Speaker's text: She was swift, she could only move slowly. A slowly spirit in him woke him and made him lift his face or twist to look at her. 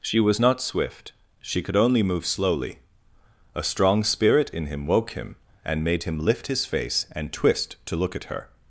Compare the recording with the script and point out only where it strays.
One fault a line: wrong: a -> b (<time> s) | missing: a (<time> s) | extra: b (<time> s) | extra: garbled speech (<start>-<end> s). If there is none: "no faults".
extra: not (0.4 s)
wrong: slowly -> strong (3.6 s)
wrong: or -> and (7.1 s)